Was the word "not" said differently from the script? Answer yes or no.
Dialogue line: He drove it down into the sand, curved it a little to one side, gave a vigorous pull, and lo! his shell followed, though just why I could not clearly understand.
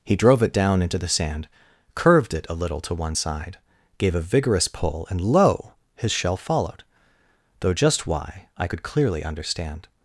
yes